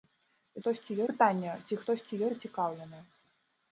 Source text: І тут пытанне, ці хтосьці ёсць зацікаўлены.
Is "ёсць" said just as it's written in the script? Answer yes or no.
no